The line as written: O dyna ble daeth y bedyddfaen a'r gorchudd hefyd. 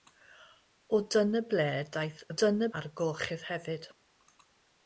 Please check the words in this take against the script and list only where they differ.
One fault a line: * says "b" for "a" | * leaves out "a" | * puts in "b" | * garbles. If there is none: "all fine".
* says "dyna" for "bedyddfaen"